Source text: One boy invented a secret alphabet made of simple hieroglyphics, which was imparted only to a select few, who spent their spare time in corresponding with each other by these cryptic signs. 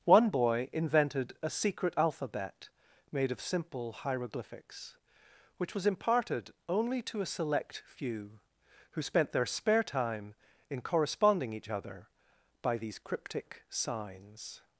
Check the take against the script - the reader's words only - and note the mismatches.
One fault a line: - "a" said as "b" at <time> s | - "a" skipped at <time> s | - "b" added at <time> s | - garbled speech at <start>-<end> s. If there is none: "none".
- "with" skipped at 11.5 s